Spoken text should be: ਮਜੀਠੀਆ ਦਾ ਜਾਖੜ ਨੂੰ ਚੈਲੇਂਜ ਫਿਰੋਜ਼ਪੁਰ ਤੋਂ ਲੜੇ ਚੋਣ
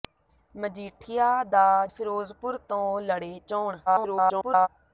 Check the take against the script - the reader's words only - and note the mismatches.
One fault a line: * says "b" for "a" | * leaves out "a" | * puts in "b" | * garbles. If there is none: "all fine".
* leaves out "ਜਾਖੜ ਨੂੰ ਚੈਲੇਂਜ"
* garbles